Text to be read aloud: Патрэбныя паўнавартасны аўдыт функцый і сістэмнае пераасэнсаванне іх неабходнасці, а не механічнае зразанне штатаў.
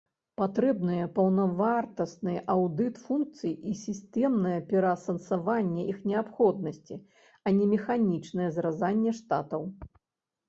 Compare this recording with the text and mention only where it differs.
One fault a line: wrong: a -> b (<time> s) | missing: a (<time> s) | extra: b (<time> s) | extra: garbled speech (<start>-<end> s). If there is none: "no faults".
no faults